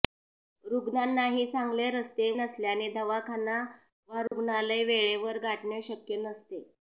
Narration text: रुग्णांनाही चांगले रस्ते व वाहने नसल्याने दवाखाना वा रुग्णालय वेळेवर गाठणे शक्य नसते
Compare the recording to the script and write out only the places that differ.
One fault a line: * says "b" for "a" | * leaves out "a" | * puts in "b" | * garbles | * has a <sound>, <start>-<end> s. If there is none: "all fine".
* leaves out "व वाहने"
* has a dropout, 4.3-4.3 s